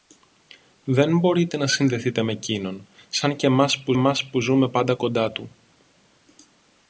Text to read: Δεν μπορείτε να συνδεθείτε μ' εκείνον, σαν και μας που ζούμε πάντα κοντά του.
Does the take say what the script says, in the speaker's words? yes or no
no